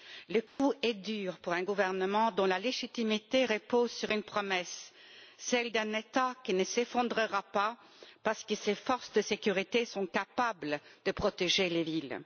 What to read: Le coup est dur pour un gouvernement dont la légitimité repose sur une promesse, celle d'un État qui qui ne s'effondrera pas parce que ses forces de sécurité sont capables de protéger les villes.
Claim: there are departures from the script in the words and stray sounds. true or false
true